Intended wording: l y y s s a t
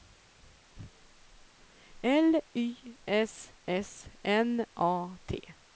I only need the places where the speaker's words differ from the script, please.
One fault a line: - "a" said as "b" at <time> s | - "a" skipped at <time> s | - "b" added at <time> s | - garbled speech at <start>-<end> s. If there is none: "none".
- "y" said as "s" at 3.0 s
- "s" said as "n" at 4.2 s